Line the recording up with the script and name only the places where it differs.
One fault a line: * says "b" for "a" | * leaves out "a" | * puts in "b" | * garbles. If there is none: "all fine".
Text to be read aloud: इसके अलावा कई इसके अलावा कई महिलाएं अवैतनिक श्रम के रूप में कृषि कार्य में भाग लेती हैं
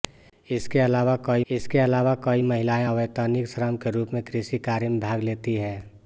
all fine